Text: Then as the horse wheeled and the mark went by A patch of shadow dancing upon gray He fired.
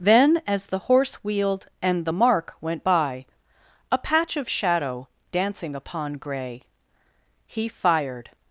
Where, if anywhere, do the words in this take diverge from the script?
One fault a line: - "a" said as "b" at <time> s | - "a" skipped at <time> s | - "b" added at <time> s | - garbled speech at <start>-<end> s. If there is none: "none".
none